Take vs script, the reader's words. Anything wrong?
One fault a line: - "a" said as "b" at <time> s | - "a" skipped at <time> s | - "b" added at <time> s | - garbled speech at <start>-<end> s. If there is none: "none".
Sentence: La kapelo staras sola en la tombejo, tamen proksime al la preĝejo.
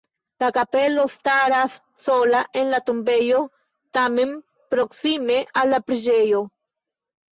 none